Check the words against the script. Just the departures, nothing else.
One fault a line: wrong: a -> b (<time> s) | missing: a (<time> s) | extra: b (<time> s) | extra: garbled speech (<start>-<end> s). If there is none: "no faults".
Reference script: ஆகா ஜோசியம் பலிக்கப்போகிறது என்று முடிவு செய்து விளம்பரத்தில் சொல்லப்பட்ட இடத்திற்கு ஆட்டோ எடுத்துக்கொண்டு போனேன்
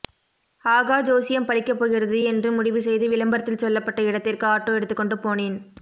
no faults